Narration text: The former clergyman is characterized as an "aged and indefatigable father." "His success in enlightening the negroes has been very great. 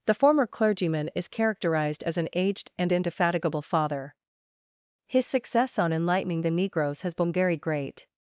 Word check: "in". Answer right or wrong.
wrong